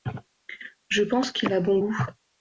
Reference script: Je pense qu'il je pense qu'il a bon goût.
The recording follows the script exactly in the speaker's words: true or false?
false